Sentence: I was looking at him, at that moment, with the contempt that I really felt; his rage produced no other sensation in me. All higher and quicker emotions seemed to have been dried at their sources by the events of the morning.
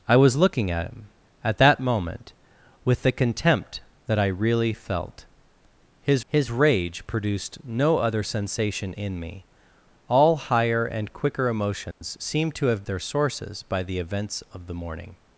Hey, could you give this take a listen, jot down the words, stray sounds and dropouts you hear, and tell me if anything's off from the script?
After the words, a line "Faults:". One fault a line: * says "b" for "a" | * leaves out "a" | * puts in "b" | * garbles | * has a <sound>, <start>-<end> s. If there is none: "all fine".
I was looking at him, at that moment, with the contempt that I really felt; his his rage produced no other sensation in me. All higher and quicker emotions seemed to have their sources by the events of the morning.
Faults:
* puts in "his"
* has a dropout, 11.9-12.0 s
* leaves out "been dried at"